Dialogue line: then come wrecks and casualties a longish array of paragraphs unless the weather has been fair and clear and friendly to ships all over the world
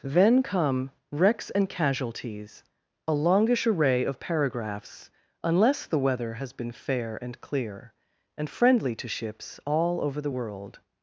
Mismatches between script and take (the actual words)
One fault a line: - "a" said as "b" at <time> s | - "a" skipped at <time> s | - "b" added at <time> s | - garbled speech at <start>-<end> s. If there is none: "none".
none